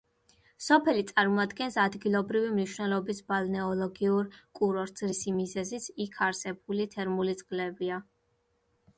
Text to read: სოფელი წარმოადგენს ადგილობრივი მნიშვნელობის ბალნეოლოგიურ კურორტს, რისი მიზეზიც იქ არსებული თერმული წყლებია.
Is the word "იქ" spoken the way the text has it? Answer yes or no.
yes